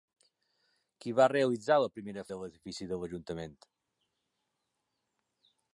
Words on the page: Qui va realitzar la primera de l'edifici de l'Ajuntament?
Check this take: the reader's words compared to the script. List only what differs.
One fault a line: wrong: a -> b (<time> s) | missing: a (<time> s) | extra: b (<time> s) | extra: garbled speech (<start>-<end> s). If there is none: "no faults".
no faults